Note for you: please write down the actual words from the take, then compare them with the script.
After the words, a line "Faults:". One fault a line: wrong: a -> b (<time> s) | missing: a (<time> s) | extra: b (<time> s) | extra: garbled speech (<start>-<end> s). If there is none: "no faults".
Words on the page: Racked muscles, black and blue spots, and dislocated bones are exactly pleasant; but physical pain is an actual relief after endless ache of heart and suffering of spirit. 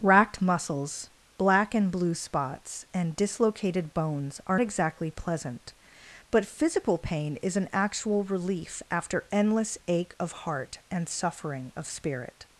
Racked muscles, black and blue spots, and dislocated bones are exactly pleasant; but physical pain is an actual relief after endless ache of heart and suffering of spirit.
Faults:
no faults